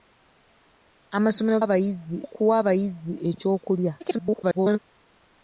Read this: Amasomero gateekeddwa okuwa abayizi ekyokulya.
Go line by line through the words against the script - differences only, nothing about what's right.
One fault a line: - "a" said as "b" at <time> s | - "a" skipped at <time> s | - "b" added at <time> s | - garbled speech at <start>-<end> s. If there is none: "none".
- "gateekeddwa" said as "abayizi" at 1.6 s
- garbled speech at 4.0-4.8 s